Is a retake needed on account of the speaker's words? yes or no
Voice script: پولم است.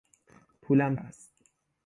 no